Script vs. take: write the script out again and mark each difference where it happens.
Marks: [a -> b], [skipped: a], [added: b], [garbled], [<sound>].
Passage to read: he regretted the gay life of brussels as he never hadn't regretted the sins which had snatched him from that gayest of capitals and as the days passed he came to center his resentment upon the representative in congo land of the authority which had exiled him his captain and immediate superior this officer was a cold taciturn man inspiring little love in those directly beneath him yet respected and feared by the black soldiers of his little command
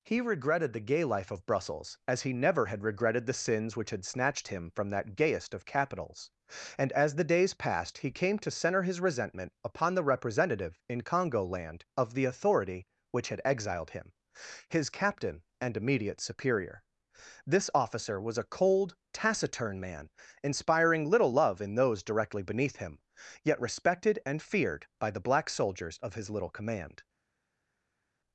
he regretted the gay life of brussels as he never [hadn't -> had] regretted the sins which had snatched him from that gayest of capitals and as the days passed he came to center his resentment upon the representative in congo land of the authority which had exiled him his captain and immediate superior this officer was a cold taciturn man inspiring little love in those directly beneath him yet respected and feared by the black soldiers of his little command